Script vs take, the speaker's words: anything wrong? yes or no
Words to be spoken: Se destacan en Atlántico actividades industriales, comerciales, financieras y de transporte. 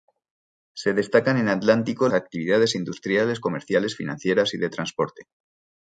no